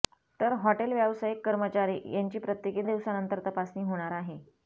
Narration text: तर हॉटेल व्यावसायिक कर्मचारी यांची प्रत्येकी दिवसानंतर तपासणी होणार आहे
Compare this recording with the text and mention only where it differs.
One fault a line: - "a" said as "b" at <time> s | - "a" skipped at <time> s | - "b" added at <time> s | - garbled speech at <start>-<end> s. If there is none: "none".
none